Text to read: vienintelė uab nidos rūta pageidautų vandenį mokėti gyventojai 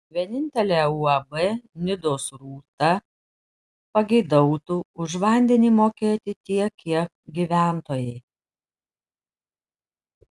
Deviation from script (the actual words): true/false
true